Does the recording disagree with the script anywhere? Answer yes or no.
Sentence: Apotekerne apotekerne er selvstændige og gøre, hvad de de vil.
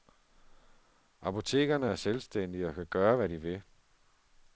yes